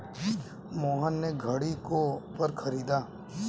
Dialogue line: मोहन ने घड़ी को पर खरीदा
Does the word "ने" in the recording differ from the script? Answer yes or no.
no